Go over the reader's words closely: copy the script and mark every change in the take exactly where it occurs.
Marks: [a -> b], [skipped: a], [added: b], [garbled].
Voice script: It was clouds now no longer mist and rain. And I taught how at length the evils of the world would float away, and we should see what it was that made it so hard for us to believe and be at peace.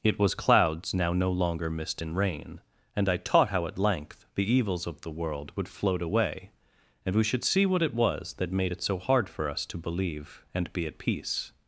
It was clouds now no longer mist and rain. And I taught how at length the evils of the world would float away, and we should see what it was that made it so hard for us to believe and be at peace.